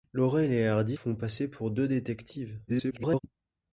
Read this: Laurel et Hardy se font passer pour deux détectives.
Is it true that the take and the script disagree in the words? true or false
true